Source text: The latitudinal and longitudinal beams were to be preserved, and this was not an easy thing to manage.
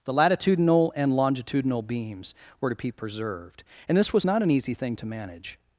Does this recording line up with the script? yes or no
yes